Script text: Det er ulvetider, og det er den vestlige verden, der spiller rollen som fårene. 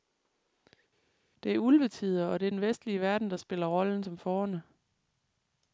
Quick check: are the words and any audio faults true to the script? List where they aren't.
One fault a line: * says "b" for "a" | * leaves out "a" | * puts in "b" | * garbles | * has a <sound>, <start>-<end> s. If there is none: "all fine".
all fine